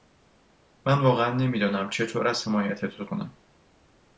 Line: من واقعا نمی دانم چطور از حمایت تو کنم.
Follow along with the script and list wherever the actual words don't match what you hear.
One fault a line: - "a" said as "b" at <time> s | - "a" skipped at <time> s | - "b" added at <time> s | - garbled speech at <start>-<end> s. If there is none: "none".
none